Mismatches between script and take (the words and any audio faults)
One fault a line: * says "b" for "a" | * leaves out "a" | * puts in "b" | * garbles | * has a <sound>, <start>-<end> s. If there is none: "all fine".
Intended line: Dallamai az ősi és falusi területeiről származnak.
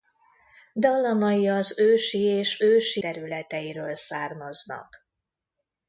* says "ősi" for "falusi"